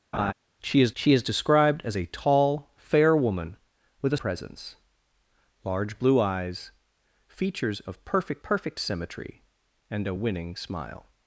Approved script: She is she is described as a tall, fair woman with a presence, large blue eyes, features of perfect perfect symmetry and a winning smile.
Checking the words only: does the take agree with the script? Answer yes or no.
yes